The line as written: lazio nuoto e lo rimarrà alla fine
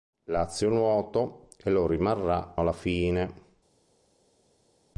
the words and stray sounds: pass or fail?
pass